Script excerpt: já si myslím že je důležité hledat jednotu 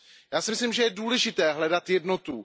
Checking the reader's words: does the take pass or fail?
pass